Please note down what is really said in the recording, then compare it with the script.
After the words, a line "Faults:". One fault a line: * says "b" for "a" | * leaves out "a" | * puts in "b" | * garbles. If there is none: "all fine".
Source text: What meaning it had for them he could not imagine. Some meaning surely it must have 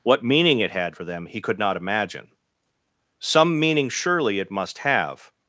What meaning it had for them he could not imagine. Some meaning surely it must have
Faults:
all fine